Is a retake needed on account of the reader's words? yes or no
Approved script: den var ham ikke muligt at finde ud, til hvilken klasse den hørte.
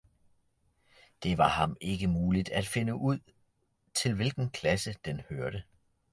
yes